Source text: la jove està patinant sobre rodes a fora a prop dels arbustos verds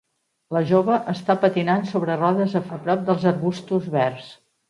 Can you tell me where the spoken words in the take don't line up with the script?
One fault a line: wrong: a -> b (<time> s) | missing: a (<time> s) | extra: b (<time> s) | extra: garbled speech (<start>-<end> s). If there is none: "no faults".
missing: fora (2.6 s)